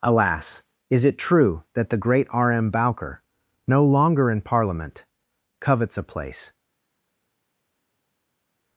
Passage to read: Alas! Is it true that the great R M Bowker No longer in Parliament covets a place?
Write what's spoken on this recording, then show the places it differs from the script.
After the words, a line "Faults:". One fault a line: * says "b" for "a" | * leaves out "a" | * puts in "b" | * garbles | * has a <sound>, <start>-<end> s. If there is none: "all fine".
Alas! Is it true that the great R M Bowker No longer in Parliament covets a place?
Faults:
all fine